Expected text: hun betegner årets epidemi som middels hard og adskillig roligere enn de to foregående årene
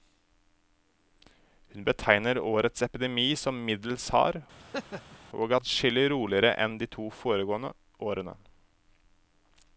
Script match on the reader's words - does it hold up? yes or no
yes